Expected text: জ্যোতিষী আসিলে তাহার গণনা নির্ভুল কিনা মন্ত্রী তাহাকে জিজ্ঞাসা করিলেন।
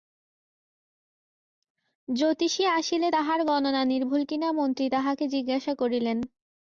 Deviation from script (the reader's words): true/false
false